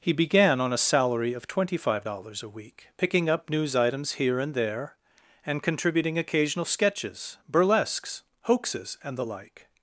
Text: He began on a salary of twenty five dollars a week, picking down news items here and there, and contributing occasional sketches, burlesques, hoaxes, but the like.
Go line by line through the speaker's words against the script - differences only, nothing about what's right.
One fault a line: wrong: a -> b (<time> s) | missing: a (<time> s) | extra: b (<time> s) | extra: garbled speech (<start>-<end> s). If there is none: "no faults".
wrong: down -> up (3.3 s)
wrong: but -> and (9.0 s)